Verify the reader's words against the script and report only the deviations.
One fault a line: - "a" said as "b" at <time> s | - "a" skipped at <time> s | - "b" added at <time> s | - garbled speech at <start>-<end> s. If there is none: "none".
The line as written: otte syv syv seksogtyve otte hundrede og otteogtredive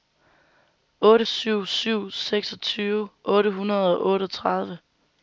none